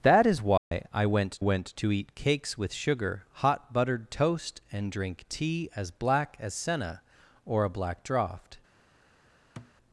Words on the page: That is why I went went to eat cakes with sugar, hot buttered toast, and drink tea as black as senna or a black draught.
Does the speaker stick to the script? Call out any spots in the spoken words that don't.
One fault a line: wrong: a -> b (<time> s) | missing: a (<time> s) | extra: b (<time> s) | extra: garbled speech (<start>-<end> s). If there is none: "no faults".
no faults